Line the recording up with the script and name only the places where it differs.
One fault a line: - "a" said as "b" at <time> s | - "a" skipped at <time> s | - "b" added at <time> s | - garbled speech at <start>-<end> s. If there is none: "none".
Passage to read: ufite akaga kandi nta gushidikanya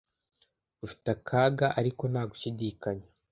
- "kandi" said as "ariko" at 1.8 s